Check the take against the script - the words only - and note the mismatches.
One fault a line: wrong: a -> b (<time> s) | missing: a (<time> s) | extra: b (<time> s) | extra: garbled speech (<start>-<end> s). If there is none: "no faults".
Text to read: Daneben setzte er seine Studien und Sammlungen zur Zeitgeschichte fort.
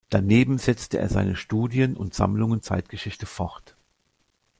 missing: zur (2.6 s)